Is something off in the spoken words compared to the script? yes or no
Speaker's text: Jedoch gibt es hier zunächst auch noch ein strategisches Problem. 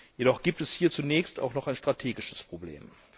no